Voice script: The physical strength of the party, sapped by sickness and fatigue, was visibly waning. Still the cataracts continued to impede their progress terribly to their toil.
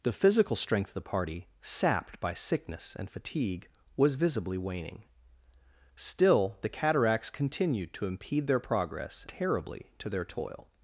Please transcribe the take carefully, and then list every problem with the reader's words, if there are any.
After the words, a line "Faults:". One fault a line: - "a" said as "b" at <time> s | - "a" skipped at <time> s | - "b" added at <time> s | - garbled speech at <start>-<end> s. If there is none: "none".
The physical strength of the party, sapped by sickness and fatigue, was visibly waning. Still the cataracts continued to impede their progress terribly to their toil.
Faults:
none